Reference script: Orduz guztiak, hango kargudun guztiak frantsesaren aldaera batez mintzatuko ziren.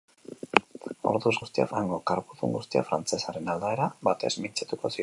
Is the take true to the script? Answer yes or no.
yes